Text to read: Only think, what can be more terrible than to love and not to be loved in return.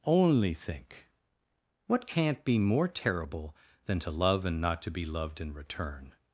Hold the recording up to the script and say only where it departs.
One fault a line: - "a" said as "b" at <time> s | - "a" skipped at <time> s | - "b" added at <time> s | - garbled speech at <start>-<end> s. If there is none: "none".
- "can" said as "can't" at 2.1 s